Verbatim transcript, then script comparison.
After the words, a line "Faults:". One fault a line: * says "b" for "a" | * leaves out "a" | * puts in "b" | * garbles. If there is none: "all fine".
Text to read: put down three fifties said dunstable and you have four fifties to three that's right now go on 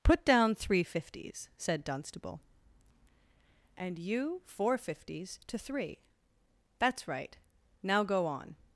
put down three fifties said dunstable and you four fifties to three that's right now go on
Faults:
* leaves out "have"